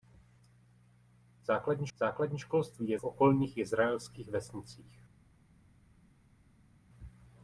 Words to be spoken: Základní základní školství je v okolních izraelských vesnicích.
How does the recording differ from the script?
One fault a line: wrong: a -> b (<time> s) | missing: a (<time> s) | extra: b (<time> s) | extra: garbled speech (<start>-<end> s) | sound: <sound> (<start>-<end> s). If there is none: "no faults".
no faults